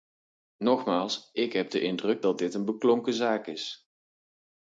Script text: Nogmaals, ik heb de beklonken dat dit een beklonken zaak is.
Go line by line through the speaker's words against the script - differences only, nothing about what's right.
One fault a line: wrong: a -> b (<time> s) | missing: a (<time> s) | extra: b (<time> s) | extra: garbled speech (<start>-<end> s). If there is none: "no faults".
wrong: beklonken -> indruk (1.8 s)